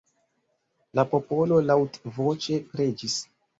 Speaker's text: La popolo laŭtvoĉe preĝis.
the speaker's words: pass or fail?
pass